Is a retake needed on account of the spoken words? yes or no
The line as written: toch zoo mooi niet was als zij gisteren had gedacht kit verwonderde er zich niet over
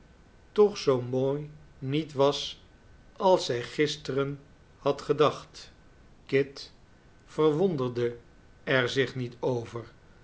no